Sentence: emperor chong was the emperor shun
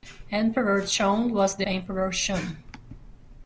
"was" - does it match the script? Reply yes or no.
yes